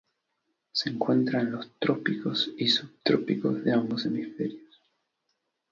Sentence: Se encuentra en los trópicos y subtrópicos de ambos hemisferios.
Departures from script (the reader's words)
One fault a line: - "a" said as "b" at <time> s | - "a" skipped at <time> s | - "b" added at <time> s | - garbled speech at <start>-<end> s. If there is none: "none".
none